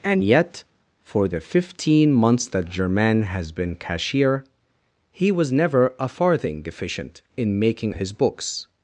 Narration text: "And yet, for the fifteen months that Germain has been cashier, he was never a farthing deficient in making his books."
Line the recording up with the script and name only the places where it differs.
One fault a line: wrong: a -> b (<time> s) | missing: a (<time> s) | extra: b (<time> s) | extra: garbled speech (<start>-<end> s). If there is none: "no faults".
no faults